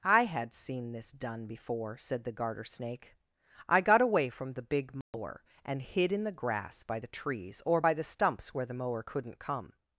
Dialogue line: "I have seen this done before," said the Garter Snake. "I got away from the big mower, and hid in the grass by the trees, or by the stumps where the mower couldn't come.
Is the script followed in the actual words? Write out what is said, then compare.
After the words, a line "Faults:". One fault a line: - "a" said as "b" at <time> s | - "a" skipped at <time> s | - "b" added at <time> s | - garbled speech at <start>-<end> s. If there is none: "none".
"I had seen this done before," said the Garter Snake. "I got away from the big mower, and hid in the grass by the trees, or by the stumps where the mower couldn't come.
Faults:
- "have" said as "had" at 0.2 s